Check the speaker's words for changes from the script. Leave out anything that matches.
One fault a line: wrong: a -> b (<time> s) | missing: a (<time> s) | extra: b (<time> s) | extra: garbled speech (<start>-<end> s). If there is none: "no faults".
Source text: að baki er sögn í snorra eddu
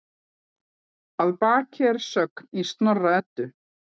no faults